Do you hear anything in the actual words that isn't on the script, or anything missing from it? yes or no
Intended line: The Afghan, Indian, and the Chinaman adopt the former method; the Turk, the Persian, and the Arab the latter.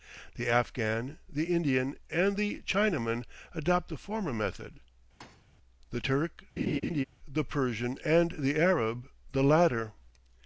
yes